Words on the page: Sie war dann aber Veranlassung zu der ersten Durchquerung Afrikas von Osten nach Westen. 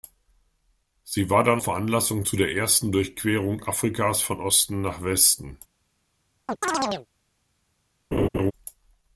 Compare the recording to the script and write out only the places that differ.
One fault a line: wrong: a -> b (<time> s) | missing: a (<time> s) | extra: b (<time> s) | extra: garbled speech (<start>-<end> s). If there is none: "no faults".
missing: aber (1.6 s)